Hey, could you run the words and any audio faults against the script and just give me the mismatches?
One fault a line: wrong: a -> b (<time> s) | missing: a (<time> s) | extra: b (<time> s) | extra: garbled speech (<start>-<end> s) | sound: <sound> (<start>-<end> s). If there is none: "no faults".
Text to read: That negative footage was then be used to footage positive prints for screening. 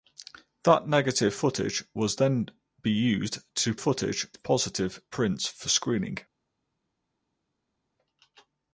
no faults